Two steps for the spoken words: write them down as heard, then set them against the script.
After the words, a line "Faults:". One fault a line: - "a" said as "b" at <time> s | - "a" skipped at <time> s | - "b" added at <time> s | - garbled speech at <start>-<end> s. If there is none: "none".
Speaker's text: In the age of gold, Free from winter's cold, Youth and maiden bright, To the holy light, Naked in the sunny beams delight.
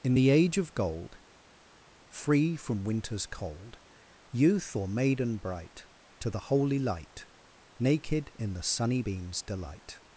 In the age of gold, Free from winter's cold, Youth or maiden bright, To the holy light, Naked in the sunny beams delight.
Faults:
- "and" said as "or" at 4.7 s